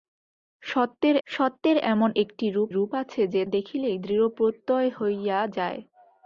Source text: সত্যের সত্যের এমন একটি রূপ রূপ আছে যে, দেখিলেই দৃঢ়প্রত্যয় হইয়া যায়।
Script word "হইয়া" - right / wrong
right